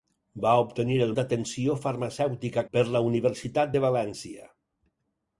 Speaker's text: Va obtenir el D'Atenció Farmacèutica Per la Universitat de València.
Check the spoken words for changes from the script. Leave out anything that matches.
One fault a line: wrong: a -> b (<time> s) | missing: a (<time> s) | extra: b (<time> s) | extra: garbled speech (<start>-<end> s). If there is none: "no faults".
no faults